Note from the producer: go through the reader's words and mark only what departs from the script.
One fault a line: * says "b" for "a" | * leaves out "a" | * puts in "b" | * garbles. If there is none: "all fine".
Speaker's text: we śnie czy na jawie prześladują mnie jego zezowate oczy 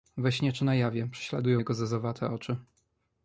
* leaves out "mnie"